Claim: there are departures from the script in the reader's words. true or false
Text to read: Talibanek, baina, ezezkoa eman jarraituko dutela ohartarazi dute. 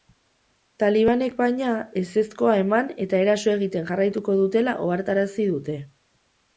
true